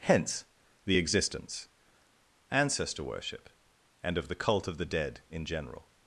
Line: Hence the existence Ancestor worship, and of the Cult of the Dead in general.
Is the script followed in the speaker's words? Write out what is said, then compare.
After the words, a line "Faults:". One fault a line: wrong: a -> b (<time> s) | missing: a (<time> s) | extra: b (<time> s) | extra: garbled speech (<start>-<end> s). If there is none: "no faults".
Hence the existence Ancestor worship, and of the Cult of the Dead in general.
Faults:
no faults